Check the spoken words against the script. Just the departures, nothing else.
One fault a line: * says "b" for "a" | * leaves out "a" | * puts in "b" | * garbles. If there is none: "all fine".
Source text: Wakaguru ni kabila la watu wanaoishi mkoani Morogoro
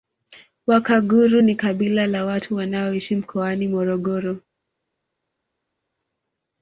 all fine